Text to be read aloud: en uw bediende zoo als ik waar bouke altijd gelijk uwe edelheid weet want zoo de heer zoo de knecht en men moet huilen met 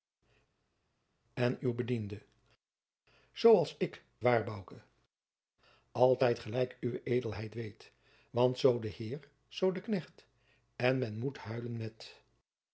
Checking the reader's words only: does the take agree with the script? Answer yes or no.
yes